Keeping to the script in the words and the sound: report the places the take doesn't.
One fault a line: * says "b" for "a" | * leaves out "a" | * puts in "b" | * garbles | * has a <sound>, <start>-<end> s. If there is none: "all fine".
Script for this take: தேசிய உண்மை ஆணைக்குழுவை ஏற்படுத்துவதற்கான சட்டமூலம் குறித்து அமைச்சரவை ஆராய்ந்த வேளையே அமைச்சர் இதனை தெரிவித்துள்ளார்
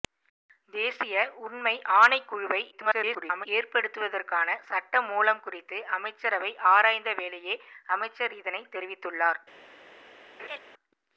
* garbles
* has a laugh, 10.4-10.6 s